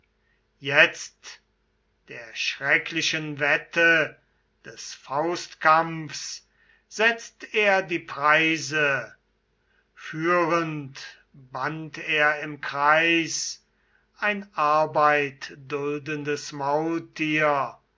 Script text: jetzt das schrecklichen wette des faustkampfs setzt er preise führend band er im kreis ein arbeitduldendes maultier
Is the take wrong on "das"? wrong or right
wrong